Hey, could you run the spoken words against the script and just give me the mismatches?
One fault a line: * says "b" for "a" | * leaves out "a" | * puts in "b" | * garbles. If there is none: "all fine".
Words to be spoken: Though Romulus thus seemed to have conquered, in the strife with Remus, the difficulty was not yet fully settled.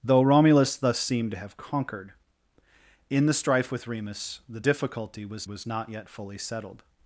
* puts in "was"